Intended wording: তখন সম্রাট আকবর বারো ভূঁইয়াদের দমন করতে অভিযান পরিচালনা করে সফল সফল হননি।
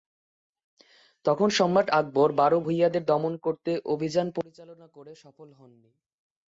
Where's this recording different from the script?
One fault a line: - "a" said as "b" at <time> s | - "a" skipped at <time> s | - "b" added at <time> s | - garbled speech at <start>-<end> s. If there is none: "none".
- "সফল" skipped at 5.5 s